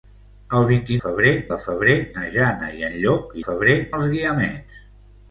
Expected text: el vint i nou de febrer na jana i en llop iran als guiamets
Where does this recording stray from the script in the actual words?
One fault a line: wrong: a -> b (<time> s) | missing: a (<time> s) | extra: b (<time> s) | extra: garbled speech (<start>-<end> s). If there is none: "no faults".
wrong: nou -> febrer (1.0 s)
wrong: iran -> febrer (3.4 s)